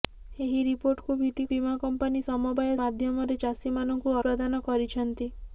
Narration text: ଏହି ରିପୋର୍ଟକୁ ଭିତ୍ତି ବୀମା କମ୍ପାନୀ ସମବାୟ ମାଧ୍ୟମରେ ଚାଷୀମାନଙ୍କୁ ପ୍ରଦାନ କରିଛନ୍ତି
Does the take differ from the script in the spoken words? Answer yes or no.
no